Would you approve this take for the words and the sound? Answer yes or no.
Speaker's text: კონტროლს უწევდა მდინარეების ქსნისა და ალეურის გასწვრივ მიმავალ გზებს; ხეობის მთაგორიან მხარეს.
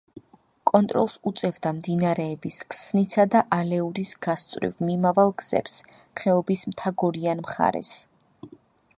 yes